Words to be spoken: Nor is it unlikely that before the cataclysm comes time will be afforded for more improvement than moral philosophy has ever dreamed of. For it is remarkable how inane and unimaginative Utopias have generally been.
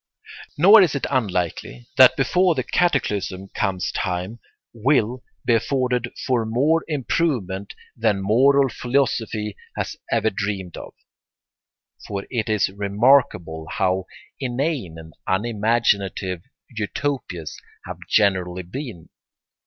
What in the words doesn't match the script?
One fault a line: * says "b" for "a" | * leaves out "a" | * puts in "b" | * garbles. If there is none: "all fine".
all fine